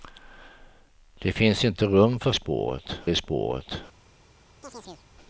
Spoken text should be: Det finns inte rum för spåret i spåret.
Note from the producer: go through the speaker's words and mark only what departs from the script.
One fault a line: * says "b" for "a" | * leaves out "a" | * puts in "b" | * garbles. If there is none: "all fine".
all fine